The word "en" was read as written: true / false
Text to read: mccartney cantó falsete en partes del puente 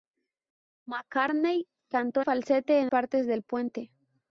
true